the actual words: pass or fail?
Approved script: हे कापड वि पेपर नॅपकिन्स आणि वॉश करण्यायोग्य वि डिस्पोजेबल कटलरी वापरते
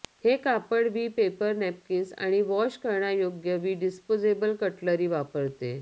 pass